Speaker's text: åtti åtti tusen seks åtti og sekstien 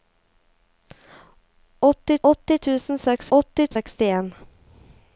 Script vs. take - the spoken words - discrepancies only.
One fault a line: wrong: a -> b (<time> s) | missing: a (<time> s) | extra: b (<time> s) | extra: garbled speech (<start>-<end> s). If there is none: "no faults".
no faults